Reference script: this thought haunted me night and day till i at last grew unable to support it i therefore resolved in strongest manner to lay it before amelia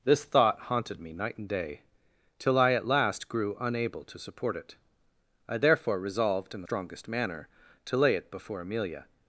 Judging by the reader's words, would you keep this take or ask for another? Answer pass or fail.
pass